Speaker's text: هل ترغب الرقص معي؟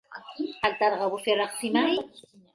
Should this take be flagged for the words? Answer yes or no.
yes